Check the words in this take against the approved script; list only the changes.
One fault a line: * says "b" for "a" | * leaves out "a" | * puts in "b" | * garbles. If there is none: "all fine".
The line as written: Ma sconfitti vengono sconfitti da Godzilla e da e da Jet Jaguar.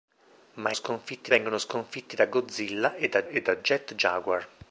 all fine